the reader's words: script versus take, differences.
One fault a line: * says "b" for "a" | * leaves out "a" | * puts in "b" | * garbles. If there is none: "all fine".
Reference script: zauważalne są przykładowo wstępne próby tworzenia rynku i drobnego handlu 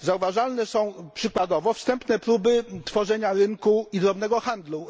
all fine